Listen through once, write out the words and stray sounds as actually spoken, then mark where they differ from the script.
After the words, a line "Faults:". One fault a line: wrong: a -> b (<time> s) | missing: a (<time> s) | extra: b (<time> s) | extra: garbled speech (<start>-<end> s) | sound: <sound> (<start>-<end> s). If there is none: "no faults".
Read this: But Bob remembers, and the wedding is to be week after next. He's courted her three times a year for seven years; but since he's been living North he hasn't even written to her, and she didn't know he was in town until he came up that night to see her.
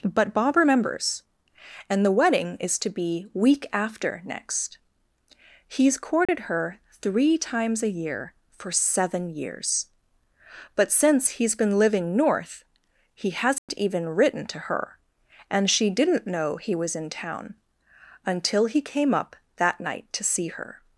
But Bob remembers, and the wedding is to be week after next. He's courted her three times a year for seven years; but since he's been living North he hasn't even written to her, and she didn't know he was in town until he came up that night to see her.
Faults:
sound: dropout (6.3-6.3 s)
sound: dropout (13.6-13.7 s)